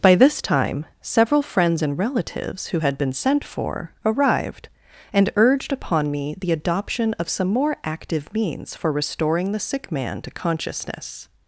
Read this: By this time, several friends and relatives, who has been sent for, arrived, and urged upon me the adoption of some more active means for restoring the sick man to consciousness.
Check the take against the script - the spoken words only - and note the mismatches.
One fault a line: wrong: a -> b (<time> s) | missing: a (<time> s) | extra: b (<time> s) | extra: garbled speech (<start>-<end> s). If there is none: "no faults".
wrong: has -> had (2.8 s)